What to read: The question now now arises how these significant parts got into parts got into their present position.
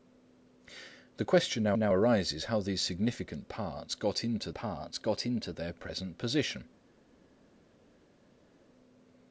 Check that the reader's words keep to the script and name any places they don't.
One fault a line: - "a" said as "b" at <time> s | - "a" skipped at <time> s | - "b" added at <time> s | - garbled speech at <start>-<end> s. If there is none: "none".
none